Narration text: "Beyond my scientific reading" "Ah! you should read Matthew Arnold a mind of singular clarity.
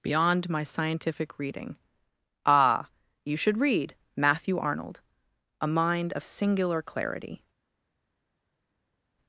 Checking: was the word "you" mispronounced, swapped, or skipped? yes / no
no